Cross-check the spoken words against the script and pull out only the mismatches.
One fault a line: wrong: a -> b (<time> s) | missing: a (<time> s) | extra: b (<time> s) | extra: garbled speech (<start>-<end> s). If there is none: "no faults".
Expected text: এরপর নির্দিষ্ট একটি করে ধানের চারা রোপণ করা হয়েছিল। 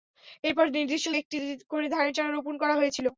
no faults